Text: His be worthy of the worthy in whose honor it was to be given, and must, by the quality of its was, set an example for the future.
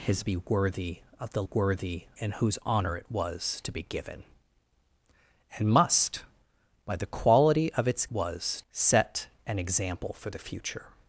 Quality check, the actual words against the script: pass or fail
pass